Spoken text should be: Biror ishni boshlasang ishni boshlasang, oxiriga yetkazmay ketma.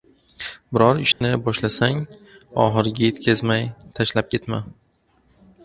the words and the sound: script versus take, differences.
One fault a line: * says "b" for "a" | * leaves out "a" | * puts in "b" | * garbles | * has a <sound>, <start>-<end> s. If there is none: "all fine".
* has a dropout, 1.1-1.2 s
* leaves out "ishni boshlasang"
* puts in "tashlab"